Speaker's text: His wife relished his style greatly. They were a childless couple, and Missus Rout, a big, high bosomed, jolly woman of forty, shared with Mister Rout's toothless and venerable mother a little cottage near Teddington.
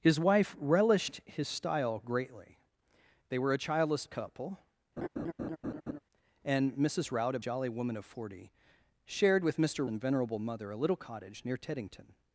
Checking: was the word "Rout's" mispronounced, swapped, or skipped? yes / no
yes